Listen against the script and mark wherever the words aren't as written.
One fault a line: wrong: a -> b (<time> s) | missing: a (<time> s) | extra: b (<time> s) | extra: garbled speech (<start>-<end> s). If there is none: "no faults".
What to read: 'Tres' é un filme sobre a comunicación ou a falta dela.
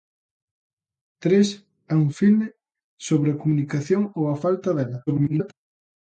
extra: garbled speech (5.1-5.5 s)